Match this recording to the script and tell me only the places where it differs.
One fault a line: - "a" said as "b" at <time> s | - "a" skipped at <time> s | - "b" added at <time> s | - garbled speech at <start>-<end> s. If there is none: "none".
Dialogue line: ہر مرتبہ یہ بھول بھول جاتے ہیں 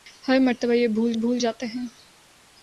none